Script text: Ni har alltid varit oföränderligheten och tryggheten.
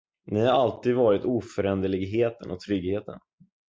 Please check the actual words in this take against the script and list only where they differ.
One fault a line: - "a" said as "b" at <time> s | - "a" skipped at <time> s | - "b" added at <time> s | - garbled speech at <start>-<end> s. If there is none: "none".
none